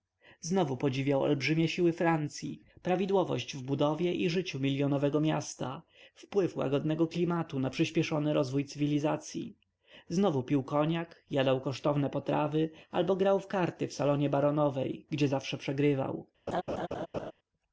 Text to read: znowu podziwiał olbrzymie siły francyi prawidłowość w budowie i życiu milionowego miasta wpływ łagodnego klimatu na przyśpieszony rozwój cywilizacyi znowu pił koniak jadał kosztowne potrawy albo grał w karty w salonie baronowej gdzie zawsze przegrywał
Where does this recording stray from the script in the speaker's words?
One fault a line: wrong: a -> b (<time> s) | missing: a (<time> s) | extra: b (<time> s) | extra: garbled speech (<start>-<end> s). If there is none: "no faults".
no faults